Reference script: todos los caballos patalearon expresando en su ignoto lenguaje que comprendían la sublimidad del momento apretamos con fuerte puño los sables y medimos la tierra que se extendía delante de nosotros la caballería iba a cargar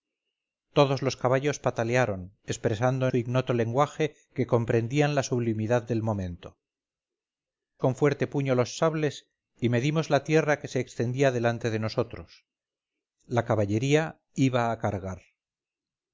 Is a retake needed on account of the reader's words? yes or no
yes